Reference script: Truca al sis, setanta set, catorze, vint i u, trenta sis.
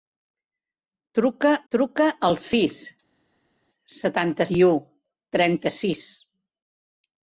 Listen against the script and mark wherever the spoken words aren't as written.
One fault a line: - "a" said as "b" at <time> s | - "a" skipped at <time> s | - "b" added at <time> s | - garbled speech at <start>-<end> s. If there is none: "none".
- "truca" added at 1.7 s
- "set catorze vint" skipped at 4.5 s